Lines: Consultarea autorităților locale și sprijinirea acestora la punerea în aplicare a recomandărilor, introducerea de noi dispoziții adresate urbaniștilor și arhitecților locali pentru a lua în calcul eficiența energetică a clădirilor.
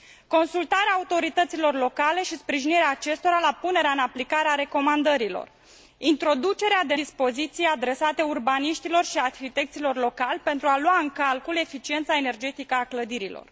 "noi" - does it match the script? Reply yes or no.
no